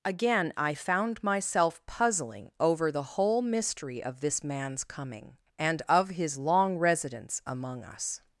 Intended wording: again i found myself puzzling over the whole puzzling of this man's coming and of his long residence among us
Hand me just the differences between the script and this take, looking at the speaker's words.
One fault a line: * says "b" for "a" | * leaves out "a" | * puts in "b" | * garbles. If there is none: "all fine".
* says "mystery" for "puzzling"